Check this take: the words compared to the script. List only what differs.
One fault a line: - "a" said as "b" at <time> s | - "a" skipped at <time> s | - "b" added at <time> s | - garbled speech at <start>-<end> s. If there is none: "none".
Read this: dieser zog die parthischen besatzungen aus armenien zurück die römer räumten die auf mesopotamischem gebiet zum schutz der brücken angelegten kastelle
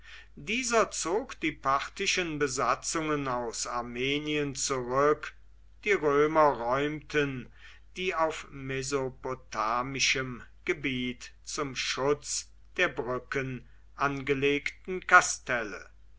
none